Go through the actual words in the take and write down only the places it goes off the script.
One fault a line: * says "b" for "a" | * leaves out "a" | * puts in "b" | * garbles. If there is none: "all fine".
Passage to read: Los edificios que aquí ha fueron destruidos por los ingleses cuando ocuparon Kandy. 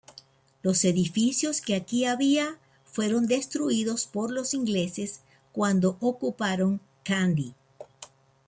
* says "había" for "ha"